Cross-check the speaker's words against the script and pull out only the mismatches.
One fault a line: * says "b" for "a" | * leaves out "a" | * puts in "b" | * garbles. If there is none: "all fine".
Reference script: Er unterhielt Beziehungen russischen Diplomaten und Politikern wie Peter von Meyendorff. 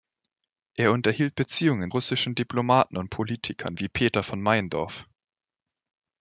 all fine